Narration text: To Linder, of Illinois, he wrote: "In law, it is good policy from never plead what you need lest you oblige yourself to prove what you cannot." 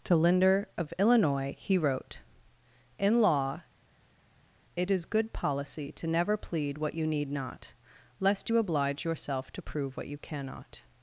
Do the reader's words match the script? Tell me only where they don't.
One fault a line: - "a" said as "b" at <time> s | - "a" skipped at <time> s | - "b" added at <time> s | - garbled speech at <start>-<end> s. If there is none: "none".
- "from" said as "to" at 5.9 s
- "not" added at 7.3 s